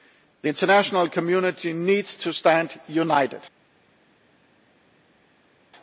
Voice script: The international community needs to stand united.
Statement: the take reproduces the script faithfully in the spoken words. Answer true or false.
true